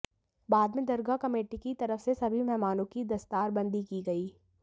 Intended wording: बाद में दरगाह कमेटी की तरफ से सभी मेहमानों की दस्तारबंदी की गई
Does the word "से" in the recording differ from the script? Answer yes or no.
no